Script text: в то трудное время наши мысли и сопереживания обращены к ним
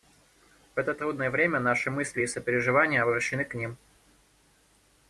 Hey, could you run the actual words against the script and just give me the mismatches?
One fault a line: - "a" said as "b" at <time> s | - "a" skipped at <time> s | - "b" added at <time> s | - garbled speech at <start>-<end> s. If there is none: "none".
- "то" said as "это" at 0.8 s